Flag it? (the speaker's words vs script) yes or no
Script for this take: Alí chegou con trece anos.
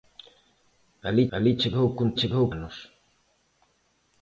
yes